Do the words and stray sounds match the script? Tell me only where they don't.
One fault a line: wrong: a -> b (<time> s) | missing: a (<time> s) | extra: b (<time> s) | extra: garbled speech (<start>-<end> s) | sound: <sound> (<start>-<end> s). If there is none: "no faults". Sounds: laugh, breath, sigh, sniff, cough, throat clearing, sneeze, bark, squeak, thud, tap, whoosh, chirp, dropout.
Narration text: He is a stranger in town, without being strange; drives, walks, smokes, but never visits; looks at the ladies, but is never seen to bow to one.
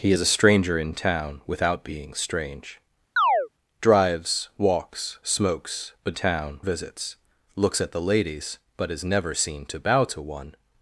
sound: chirp (3.2-3.5 s)
wrong: never -> town (6.1 s)